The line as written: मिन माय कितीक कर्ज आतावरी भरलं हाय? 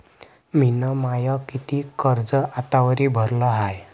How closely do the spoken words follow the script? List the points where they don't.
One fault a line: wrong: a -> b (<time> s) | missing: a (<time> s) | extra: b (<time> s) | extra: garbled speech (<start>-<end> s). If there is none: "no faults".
no faults